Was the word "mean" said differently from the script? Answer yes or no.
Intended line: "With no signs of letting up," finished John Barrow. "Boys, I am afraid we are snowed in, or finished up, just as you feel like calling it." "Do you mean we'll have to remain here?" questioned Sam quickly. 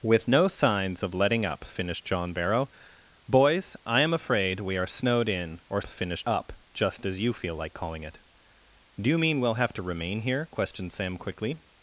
no